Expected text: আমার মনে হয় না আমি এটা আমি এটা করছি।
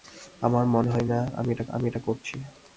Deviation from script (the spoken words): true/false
false